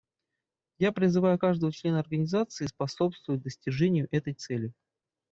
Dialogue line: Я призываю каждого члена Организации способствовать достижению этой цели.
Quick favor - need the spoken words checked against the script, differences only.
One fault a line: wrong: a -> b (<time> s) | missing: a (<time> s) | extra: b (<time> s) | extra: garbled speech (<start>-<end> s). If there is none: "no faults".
no faults